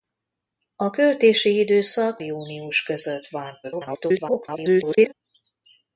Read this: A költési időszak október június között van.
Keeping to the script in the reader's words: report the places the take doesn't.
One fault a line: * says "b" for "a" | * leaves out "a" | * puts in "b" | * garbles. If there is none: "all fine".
* leaves out "október"
* garbles